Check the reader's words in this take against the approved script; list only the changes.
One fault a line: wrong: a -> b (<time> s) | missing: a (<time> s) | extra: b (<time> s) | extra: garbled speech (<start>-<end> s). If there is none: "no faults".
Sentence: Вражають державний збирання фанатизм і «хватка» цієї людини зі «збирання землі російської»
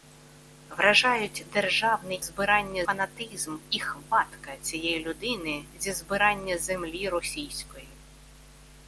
no faults